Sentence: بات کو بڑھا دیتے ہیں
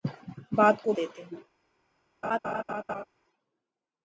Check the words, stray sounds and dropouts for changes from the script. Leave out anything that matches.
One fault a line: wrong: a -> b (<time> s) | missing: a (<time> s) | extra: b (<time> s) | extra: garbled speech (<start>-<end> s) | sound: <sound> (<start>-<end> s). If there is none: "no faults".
missing: بڑھا (0.9 s)
sound: laugh (2.2-3.0 s)